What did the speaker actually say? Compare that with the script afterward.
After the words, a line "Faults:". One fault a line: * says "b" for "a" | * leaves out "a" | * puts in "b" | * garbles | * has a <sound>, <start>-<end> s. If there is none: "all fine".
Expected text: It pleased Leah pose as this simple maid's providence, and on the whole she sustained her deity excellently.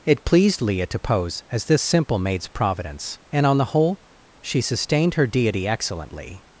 It pleased Leah to pose as this simple maid's providence, and on the whole she sustained her deity excellently.
Faults:
* puts in "to"